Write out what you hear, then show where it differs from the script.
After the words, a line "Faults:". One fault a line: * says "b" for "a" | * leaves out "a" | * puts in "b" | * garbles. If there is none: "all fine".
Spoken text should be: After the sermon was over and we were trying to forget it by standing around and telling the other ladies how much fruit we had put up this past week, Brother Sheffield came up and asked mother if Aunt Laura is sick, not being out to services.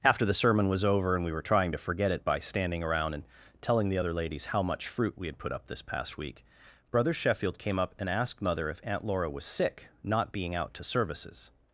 After the sermon was over and we were trying to forget it by standing around and telling the other ladies how much fruit we had put up this past week, Brother Sheffield came up and asked mother if Aunt Laura was sick, not being out to services.
Faults:
* says "was" for "is"